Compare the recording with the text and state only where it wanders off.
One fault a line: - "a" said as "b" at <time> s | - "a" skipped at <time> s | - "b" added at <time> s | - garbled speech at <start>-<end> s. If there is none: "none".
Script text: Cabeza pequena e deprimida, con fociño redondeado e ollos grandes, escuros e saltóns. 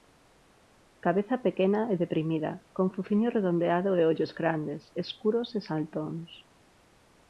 none